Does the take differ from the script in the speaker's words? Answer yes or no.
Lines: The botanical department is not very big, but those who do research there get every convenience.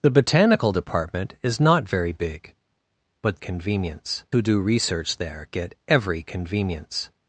yes